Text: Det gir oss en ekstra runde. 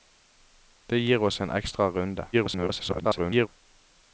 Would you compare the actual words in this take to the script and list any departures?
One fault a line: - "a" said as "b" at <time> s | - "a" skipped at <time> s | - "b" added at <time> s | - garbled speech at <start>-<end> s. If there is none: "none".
- garbled speech at 2.3-3.5 s